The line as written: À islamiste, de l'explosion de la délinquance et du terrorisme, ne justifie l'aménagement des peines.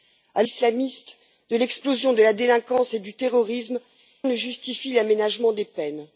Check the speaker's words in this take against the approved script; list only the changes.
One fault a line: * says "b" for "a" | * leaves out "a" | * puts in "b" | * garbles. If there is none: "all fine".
all fine